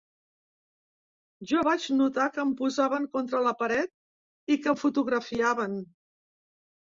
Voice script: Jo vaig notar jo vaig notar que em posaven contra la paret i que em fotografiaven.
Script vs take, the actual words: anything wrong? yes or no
yes